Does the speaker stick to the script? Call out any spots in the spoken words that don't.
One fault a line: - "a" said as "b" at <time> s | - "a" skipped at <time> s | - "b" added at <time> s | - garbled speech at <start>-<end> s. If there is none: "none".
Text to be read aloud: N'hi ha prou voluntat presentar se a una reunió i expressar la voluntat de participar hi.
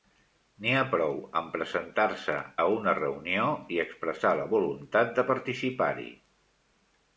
- "voluntat" said as "amb" at 1.4 s